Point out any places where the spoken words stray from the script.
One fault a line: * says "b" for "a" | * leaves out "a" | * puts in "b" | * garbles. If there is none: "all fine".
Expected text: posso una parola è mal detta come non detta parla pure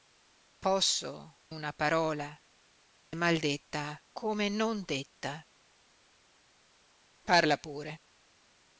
all fine